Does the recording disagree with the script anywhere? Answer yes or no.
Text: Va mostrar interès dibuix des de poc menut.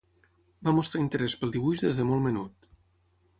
yes